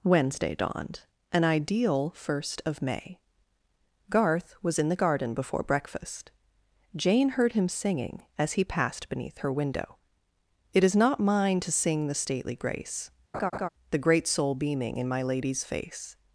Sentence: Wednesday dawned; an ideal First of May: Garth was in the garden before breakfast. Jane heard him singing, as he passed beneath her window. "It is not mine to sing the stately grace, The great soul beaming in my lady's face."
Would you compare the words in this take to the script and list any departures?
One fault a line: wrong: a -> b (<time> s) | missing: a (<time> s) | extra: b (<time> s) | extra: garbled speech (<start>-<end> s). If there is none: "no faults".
no faults